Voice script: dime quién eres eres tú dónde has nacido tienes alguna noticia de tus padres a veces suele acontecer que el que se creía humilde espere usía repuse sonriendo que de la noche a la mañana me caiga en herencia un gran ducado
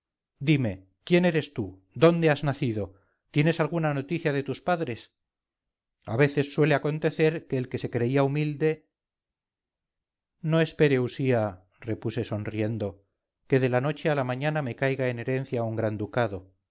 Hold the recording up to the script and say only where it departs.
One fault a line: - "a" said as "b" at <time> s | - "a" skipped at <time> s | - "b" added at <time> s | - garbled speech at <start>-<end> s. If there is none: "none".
- "eres" skipped at 1.5 s
- "no" added at 10.4 s